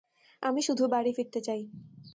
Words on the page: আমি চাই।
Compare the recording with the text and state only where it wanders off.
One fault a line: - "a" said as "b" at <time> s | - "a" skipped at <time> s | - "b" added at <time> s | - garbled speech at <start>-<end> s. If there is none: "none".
- "শুধু বাড়ি ফিরতে" added at 0.6 s